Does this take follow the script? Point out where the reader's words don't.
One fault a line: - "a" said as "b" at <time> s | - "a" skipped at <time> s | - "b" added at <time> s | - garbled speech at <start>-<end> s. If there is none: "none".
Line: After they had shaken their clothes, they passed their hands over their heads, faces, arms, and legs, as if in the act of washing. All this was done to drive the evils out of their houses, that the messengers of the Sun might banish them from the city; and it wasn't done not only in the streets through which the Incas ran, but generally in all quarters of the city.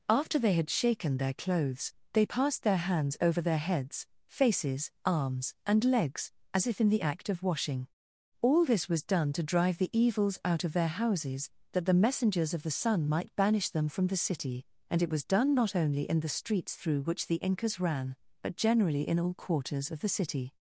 - "wasn't" said as "was" at 15.1 s